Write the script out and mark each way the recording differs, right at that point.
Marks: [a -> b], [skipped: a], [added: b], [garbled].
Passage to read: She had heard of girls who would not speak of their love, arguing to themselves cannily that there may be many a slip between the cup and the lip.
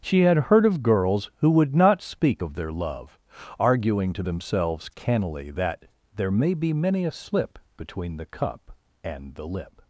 She had heard of girls who would not speak of their love, arguing to themselves cannily that there may be many a slip between the cup and the lip.